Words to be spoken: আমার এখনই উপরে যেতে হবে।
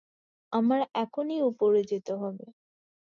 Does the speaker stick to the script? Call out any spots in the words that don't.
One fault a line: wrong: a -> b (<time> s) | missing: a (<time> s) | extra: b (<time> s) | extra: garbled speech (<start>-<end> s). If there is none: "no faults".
no faults